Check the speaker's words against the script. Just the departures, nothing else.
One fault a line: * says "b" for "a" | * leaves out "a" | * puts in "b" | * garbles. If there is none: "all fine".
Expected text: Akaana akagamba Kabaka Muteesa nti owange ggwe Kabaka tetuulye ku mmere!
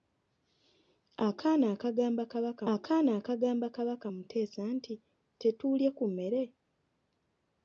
* says "akaana akagamba Kabaka Muteesa nti" for "Muteesa nti owange ggwe Kabaka"